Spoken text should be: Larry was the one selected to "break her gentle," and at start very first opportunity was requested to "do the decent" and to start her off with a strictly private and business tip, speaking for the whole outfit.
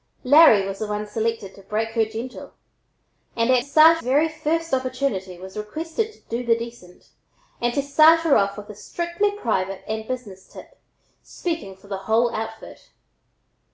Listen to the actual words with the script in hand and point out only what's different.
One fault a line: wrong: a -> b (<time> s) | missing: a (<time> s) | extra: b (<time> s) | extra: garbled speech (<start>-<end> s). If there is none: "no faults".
no faults